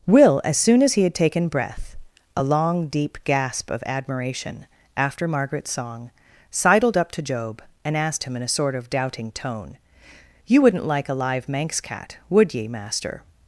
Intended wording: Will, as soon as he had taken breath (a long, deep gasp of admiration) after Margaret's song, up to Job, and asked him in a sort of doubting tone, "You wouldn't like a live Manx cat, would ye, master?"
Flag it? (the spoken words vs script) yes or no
yes